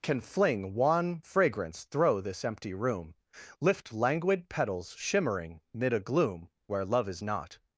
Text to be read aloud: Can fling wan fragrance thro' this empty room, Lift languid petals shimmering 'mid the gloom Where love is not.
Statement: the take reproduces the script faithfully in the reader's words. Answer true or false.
false